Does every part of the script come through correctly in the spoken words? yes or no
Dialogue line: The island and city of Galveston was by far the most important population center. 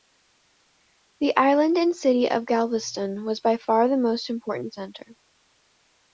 no